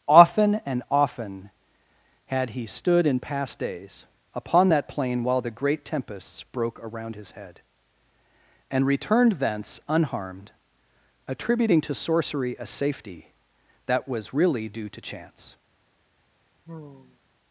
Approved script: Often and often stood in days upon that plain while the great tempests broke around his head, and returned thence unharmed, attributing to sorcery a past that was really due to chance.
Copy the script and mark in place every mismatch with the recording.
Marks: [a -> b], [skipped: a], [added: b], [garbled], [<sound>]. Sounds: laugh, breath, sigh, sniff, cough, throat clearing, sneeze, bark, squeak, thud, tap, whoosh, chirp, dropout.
Often and often [added: had he] stood in [added: past] days upon that plain while the great tempests broke around his head, and returned thence unharmed, attributing to sorcery a [past -> safety] that was really due to chance. [sigh]